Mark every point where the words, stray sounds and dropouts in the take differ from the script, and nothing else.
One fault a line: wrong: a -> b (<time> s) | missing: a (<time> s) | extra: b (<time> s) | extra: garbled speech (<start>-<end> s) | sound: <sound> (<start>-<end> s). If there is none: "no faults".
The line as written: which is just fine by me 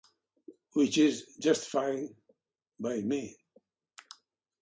no faults